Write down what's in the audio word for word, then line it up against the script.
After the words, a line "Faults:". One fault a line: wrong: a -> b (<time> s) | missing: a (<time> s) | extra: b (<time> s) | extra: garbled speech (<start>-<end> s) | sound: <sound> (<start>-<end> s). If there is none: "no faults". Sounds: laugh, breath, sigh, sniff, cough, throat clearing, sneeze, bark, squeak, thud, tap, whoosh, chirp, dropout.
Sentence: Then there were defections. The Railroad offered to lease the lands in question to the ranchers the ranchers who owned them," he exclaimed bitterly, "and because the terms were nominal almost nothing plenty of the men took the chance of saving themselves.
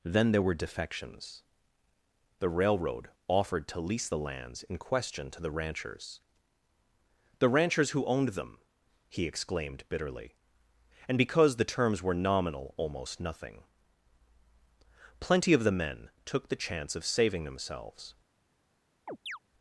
Then there were defections. The Railroad offered to lease the lands in question to the ranchers the ranchers who owned them," he exclaimed bitterly, "and because the terms were nominal almost nothing plenty of the men took the chance of saving themselves.
Faults:
sound: chirp (19.1-19.4 s)